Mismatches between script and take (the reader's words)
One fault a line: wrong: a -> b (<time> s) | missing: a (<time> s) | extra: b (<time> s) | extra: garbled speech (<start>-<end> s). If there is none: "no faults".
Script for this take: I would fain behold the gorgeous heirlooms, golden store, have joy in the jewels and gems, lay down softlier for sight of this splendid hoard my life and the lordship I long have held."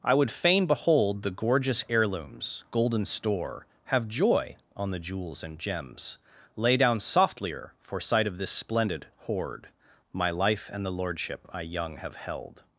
wrong: in -> on (4.8 s)
wrong: long -> young (11.6 s)